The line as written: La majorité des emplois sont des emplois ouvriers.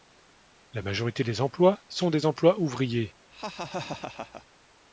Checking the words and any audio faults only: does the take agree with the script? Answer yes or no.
no